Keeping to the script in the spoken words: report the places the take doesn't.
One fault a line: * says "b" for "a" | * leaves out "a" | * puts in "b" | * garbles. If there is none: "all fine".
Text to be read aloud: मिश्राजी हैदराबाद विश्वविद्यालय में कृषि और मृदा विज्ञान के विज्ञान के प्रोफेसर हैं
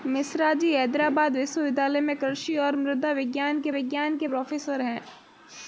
all fine